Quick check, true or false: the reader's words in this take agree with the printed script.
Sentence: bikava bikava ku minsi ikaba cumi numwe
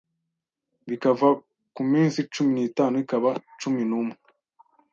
false